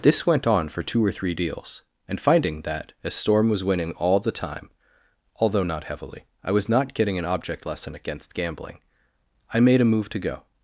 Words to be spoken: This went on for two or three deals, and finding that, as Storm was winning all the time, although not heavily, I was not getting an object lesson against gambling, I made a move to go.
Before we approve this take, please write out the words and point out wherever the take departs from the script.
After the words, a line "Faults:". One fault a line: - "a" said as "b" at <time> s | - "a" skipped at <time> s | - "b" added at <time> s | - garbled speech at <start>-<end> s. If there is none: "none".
This went on for two or three deals, and finding that, as Storm was winning all the time, although not heavily, I was not getting an object lesson against gambling, I made a move to go.
Faults:
none